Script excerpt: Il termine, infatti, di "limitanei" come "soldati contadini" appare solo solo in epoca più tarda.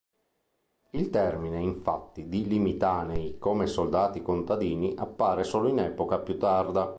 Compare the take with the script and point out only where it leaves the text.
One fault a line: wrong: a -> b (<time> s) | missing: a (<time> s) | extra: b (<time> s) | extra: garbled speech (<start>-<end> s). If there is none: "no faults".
missing: solo (5.7 s)